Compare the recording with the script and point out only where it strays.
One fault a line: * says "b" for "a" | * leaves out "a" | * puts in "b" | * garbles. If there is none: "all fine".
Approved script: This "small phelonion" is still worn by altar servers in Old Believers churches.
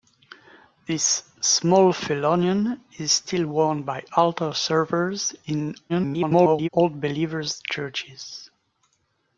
* garbles